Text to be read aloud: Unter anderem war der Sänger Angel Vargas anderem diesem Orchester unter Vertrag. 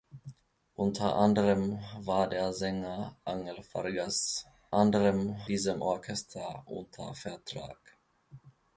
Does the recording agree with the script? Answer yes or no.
yes